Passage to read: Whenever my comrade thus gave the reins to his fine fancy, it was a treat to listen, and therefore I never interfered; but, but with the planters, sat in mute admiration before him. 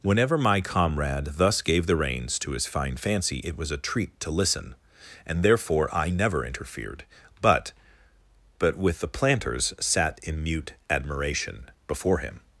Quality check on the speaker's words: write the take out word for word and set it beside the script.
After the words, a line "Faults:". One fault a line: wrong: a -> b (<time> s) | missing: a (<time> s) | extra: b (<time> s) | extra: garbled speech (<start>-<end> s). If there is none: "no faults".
Whenever my comrade thus gave the reins to his fine fancy, it was a treat to listen, and therefore I never interfered; but, but with the planters, sat in mute admiration before him.
Faults:
no faults